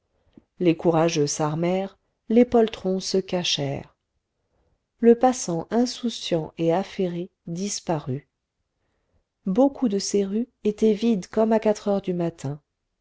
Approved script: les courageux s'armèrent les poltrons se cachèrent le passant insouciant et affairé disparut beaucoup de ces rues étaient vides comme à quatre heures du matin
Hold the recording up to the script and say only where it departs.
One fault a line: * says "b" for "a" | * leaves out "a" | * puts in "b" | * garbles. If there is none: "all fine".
all fine